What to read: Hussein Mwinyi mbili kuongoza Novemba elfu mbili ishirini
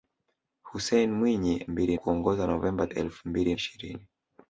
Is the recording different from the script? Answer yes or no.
no